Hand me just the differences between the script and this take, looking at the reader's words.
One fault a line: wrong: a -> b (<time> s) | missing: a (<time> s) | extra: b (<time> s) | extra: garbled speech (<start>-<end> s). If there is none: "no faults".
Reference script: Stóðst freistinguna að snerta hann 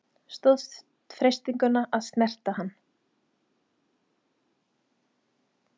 no faults